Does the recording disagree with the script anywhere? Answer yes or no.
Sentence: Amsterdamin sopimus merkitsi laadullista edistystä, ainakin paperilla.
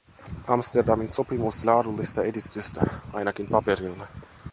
yes